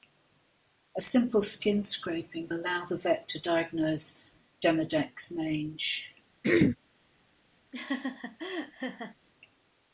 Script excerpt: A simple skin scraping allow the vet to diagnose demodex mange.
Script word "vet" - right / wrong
right